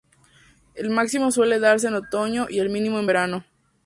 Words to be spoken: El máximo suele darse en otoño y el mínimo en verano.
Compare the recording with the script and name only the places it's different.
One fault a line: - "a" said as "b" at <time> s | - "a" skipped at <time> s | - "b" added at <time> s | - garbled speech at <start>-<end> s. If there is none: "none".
none